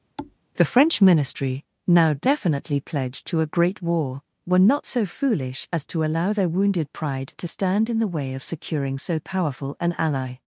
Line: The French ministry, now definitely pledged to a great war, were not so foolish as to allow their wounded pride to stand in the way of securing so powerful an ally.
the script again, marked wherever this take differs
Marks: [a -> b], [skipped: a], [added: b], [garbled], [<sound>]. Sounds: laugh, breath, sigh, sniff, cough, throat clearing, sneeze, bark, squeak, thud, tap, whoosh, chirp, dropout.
[thud] The French ministry, now definitely pledged to a great war, were not so foolish as to allow their wounded pride to stand in the way of securing so powerful an ally.